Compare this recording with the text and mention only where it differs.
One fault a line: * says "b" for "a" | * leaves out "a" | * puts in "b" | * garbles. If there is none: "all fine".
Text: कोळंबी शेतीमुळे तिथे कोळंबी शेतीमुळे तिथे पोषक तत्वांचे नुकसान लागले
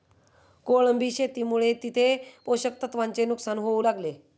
* leaves out "कोळंबी शेतीमुळे तिथे"
* puts in "होऊ"